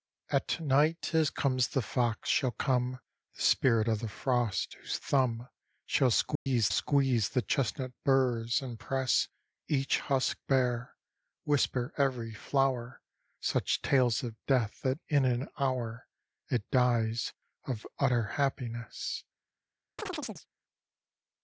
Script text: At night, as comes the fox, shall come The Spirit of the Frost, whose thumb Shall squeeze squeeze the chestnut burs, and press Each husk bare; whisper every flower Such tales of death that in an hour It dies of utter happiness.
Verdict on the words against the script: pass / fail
pass